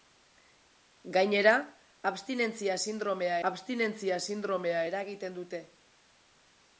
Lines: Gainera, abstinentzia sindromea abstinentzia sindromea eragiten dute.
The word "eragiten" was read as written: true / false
true